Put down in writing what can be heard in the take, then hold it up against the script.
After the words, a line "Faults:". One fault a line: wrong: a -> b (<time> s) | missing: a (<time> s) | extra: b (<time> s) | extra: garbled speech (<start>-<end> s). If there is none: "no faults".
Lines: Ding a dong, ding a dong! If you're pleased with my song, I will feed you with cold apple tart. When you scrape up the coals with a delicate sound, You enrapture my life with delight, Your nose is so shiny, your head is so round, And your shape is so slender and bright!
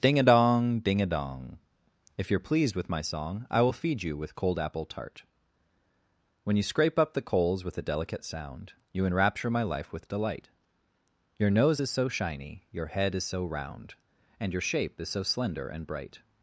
Ding a dong, ding a dong! If you're pleased with my song, I will feed you with cold apple tart. When you scrape up the coals with a delicate sound, You enrapture my life with delight, Your nose is so shiny, your head is so round, And your shape is so slender and bright!
Faults:
no faults